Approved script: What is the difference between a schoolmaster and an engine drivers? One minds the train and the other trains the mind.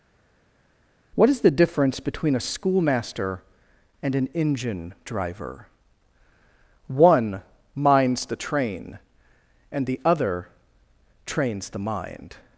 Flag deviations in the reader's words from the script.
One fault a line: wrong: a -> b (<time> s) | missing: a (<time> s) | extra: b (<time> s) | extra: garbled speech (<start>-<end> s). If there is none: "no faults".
wrong: drivers -> driver (5.0 s)